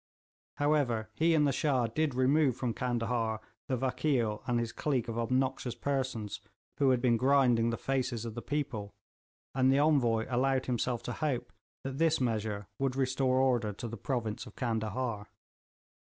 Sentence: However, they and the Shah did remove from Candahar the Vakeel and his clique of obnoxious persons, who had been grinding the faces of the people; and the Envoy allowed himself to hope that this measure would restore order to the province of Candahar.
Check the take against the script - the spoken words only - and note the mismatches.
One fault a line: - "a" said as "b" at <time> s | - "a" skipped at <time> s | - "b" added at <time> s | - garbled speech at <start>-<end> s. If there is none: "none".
- "they" said as "he" at 1.1 s